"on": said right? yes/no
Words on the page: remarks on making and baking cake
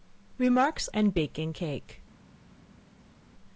no